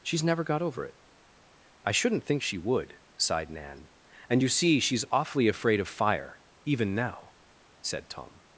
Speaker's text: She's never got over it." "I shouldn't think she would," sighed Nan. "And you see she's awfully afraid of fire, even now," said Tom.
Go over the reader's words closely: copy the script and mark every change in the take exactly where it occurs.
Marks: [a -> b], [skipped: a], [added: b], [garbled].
She's never got over it." "I shouldn't think she would," sighed Nan. "And you see she's awfully afraid of fire, even now," said Tom.